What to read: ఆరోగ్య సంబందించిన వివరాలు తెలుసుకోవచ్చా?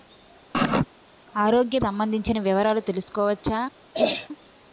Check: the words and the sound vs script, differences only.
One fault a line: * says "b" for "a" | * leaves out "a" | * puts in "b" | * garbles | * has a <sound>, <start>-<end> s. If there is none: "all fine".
* has a sneeze, 0.5-0.9 s
* has a throat clearing, 3.9-4.3 s